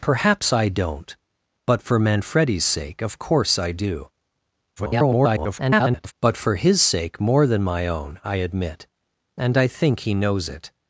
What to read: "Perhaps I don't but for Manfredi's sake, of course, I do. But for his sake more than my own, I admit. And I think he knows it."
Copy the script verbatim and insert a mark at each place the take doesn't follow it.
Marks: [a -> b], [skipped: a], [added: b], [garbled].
"Perhaps I don't but for Manfredi's sake, of course, I do. [garbled] But for his sake more than my own, I admit. And I think he knows it."